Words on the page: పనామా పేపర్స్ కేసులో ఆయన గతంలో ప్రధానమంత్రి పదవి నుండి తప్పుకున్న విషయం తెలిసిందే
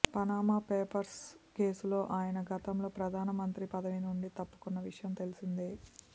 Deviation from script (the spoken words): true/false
false